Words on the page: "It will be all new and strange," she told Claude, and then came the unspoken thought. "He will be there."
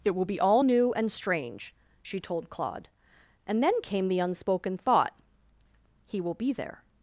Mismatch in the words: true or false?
false